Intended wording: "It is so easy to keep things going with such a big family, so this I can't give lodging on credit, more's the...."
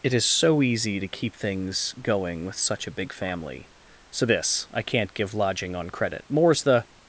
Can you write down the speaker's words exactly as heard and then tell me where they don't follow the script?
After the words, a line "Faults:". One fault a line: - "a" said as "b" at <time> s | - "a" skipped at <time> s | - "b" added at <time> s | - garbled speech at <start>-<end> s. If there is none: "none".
"It is so easy to keep things going with such a big family, so this I can't give lodging on credit, more's the...."
Faults:
none